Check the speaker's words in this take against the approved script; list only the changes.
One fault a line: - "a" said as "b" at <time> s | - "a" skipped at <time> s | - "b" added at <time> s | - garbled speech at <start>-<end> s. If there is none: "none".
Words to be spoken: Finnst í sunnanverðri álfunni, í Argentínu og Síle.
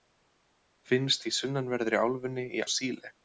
- "Argentínu" skipped at 2.6 s